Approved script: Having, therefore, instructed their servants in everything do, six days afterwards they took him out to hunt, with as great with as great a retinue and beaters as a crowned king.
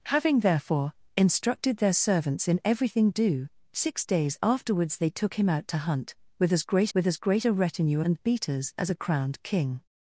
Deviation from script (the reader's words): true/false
false